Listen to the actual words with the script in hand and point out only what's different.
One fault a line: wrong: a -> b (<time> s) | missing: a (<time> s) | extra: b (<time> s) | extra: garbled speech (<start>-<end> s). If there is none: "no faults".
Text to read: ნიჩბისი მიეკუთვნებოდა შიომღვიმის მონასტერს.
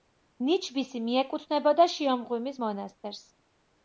no faults